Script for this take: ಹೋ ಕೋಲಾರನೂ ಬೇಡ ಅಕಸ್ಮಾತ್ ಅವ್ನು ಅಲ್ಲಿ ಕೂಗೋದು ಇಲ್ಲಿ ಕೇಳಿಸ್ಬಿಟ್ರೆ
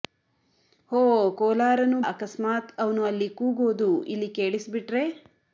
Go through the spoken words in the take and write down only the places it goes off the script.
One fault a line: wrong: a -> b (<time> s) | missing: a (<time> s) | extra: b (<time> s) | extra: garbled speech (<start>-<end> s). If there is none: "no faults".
missing: ಬೇಡ (2.0 s)